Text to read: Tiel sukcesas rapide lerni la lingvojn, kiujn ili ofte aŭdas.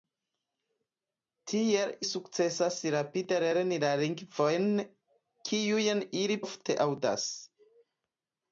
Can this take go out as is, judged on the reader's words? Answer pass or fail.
pass